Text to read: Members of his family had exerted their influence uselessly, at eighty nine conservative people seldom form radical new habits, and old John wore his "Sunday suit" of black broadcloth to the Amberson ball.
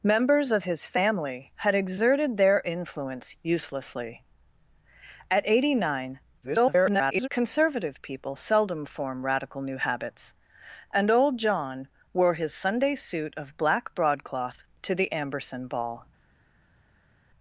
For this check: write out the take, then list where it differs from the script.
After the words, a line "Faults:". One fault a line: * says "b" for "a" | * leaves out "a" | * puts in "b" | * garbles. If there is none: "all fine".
Members of his family had exerted their influence uselessly, at eighty nine [garbled] conservative people seldom form radical new habits, and old John wore his "Sunday suit" of black broadcloth to the Amberson ball.
Faults:
* garbles